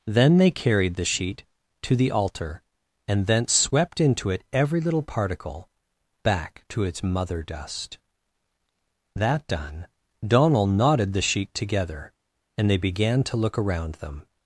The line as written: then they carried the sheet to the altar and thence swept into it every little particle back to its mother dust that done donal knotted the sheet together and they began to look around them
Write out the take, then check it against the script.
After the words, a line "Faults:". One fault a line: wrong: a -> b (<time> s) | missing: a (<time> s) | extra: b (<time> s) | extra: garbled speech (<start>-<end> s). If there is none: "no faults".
then they carried the sheet to the altar and thence swept into it every little particle back to its mother dust that done donal knotted the sheet together and they began to look around them
Faults:
no faults